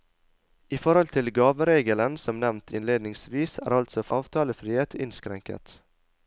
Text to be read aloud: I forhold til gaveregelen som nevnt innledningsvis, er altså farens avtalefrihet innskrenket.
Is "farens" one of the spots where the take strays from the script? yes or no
yes